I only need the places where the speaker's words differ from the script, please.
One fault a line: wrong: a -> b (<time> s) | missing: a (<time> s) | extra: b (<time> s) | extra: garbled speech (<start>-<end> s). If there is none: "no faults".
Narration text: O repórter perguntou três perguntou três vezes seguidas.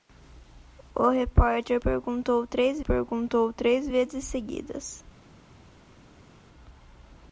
no faults